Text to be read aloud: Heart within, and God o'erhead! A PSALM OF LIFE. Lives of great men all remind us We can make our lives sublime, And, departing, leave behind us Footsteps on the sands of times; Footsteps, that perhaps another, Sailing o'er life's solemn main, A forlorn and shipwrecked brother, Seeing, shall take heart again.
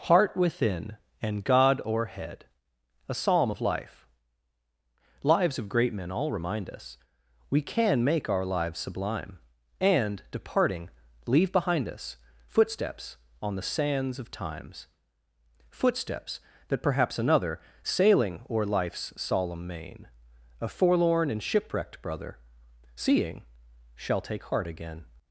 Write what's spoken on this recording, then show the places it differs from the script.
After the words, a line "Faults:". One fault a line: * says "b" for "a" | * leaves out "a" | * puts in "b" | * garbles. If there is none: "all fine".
Heart within, and God o'erhead! A PSALM OF LIFE. Lives of great men all remind us We can make our lives sublime, And, departing, leave behind us Footsteps on the sands of times; Footsteps, that perhaps another, Sailing o'er life's solemn main, A forlorn and shipwrecked brother, Seeing, shall take heart again.
Faults:
all fine